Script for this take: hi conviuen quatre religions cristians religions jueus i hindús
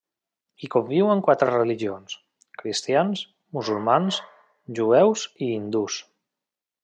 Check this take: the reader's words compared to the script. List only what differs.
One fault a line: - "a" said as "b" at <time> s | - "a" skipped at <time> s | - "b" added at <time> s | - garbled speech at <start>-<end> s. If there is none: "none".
- "religions" said as "musulmans" at 3.6 s